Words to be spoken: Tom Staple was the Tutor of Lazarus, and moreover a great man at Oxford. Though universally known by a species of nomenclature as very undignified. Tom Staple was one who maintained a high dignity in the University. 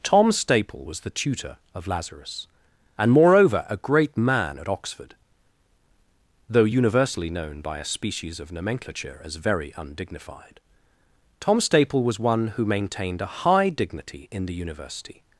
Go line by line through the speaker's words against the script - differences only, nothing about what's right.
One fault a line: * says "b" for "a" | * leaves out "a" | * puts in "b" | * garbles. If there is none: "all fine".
all fine